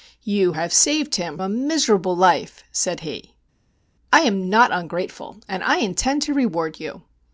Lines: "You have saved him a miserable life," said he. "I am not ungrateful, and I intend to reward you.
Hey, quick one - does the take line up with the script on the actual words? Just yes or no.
yes